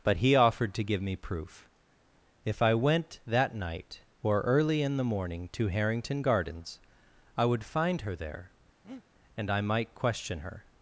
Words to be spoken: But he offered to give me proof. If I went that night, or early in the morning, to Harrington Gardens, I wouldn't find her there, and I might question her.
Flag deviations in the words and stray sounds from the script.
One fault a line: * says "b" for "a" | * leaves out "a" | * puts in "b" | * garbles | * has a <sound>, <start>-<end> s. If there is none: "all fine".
* says "would" for "wouldn't"
* has a breath, 8.8-9.0 s